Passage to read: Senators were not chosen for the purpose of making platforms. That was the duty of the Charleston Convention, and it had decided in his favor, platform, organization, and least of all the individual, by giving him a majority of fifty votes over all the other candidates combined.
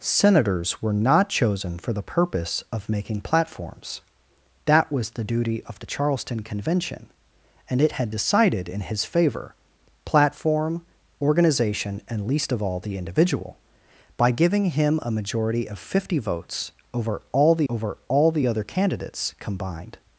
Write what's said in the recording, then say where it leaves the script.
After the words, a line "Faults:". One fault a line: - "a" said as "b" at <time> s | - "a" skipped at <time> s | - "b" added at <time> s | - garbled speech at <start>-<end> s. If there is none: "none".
Senators were not chosen for the purpose of making platforms. That was the duty of the Charleston Convention, and it had decided in his favor, platform, organization, and least of all the individual, by giving him a majority of fifty votes over all the over all the other candidates combined.
Faults:
- "over all the" added at 17.7 s